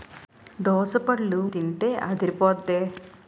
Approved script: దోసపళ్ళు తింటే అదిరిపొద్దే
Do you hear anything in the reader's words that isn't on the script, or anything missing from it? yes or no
no